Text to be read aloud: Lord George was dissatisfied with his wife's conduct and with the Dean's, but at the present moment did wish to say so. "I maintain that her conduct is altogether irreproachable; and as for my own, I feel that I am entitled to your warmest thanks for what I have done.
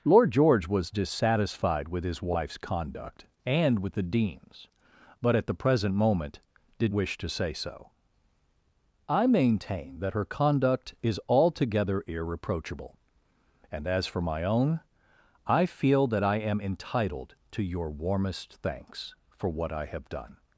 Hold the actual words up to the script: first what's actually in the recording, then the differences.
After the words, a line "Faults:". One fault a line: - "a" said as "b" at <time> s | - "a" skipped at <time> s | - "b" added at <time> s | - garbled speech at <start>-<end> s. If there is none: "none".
Lord George was dissatisfied with his wife's conduct and with the Dean's, but at the present moment did wish to say so. "I maintain that her conduct is altogether irreproachable; and as for my own, I feel that I am entitled to your warmest thanks for what I have done.
Faults:
none